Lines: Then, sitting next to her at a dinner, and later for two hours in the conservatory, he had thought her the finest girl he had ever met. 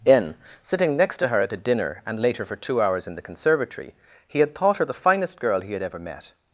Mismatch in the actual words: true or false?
true